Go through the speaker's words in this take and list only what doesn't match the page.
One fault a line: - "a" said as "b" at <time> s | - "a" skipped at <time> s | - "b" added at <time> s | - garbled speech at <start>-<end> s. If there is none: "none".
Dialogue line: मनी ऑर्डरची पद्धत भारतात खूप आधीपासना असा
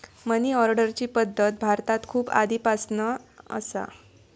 none